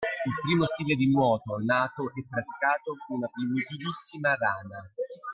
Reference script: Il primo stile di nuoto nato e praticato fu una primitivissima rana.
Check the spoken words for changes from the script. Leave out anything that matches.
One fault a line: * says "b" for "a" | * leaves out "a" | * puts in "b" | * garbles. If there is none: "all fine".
all fine